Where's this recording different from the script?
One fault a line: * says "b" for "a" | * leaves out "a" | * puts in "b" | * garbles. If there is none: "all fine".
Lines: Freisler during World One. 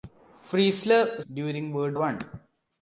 all fine